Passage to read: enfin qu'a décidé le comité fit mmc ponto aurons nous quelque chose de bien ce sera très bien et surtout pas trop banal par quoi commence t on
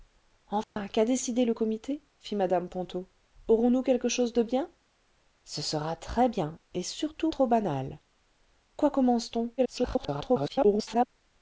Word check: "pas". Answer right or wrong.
wrong